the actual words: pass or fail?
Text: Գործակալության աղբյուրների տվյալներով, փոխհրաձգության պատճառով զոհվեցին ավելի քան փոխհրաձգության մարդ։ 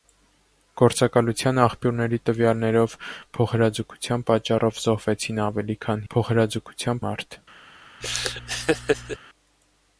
pass